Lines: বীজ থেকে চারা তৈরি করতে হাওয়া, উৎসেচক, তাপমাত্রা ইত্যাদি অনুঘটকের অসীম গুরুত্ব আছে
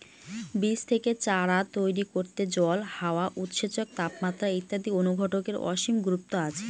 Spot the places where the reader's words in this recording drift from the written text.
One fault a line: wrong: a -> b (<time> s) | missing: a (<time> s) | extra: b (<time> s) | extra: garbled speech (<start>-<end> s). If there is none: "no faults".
extra: জল (2.6 s)